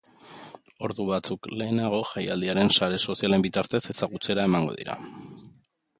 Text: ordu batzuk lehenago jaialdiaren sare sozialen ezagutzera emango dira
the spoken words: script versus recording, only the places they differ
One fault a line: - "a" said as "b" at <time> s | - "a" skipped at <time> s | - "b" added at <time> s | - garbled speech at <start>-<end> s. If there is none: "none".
- "bitartez" added at 3.5 s